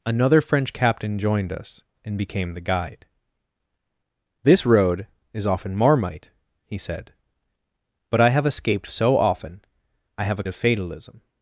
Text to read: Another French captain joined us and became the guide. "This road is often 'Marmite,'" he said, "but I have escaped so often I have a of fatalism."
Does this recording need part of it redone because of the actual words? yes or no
no